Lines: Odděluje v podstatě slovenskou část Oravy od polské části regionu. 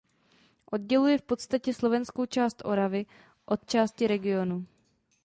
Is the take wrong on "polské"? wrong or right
wrong